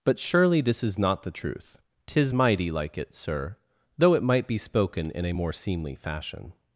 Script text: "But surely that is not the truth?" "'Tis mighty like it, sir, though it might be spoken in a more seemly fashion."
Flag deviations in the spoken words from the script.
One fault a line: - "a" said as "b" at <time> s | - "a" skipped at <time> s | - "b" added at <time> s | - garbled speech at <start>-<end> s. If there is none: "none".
- "that" said as "this" at 0.6 s